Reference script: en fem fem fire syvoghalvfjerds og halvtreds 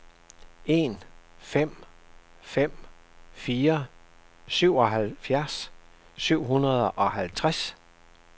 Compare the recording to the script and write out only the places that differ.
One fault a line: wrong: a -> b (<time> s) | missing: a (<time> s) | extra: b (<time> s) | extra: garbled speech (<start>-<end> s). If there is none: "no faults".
extra: syv hundrede (6.2 s)